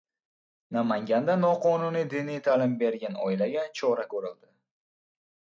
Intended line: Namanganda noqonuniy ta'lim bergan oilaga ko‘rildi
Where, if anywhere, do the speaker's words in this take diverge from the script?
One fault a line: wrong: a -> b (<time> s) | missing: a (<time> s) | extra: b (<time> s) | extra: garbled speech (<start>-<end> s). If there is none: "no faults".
extra: diniy (2.1 s)
extra: chora (3.8 s)